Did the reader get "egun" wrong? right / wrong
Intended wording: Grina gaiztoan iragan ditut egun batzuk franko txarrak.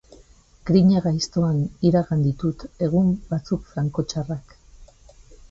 right